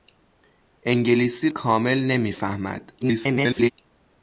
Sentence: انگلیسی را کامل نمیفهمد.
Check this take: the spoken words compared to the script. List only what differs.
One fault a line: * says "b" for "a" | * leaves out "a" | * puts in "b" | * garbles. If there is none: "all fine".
* leaves out "را"
* garbles